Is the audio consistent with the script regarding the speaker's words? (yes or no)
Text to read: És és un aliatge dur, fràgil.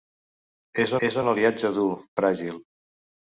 yes